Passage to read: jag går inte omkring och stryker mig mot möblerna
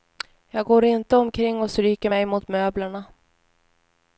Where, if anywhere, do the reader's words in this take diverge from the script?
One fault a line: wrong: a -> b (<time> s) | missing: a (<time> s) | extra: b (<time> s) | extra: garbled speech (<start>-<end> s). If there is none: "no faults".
no faults